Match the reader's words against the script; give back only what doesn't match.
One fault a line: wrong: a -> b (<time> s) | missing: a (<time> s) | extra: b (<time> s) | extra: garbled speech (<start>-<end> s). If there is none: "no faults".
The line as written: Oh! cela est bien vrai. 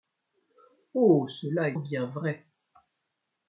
no faults